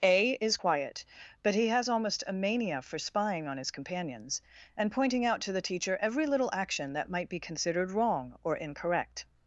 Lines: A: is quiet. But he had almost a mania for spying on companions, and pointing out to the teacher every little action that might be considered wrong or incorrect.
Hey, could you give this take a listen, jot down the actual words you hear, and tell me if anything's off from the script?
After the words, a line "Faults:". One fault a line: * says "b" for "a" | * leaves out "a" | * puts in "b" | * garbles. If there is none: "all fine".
A: is quiet. But he has almost a mania for spying on his companions, and pointing out to the teacher every little action that might be considered wrong or incorrect.
Faults:
* says "has" for "had"
* puts in "his"